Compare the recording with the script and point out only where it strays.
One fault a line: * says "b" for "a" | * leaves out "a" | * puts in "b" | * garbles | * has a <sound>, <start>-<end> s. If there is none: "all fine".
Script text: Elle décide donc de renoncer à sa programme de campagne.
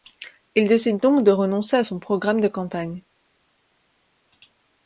* says "Il" for "Elle"
* says "son" for "sa"